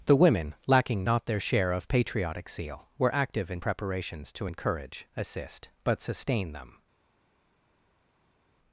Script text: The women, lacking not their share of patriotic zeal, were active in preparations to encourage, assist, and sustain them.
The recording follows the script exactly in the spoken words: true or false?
false